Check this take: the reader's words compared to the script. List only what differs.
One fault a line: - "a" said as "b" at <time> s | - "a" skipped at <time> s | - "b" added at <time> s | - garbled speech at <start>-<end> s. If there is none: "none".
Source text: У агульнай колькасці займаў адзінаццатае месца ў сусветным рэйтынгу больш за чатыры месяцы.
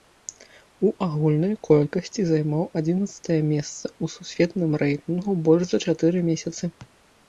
none